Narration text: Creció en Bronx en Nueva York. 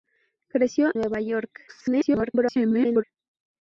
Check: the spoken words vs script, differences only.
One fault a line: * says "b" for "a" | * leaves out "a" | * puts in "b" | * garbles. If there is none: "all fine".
* leaves out "en Bronx en"
* garbles